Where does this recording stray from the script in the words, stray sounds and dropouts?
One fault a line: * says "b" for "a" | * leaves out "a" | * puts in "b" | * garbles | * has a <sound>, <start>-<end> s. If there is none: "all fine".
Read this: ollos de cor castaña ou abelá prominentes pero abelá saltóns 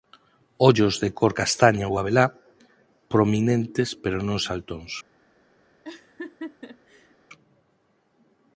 * says "non" for "abelá"
* has a laugh, 5.8-7.1 s